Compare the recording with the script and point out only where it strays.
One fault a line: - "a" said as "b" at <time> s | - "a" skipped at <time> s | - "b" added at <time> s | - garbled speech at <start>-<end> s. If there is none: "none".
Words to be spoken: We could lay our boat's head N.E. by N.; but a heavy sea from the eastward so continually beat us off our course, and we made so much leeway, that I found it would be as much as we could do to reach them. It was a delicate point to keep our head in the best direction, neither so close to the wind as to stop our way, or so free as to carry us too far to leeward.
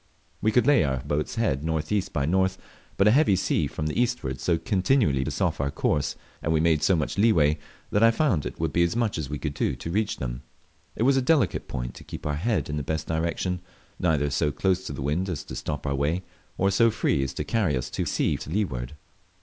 - "beat" skipped at 5.2 s
- "far" said as "sea" at 18.0 s